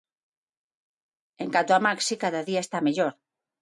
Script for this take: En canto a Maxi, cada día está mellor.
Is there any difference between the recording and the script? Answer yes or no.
no